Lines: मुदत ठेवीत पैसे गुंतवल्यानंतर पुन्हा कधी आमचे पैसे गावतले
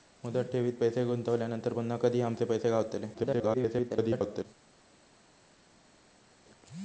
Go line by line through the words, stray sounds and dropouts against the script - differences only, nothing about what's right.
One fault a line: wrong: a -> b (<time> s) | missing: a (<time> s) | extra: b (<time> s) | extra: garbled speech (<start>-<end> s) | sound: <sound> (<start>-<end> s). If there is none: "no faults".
extra: garbled speech (3.1-4.4 s)